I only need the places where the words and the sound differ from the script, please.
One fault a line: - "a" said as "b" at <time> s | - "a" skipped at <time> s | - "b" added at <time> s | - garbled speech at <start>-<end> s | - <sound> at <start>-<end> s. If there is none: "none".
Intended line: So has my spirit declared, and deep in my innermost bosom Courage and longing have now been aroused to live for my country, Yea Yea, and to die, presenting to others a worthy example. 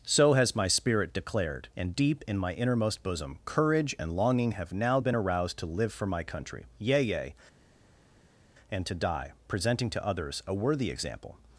none